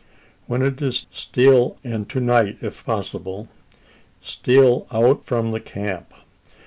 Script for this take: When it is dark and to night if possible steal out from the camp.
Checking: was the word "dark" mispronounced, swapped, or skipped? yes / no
yes